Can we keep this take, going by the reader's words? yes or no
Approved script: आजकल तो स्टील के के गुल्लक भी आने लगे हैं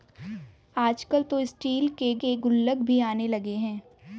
yes